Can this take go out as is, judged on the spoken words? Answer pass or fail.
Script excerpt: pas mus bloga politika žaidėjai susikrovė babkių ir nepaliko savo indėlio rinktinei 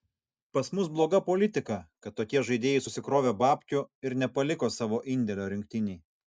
fail